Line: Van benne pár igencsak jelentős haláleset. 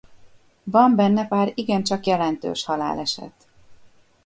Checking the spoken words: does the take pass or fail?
pass